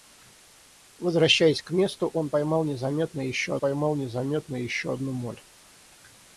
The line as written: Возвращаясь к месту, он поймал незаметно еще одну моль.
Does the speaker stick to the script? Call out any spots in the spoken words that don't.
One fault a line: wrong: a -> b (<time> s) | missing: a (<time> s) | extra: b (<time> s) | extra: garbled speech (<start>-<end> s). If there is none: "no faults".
extra: поймал незаметно еще (3.6 s)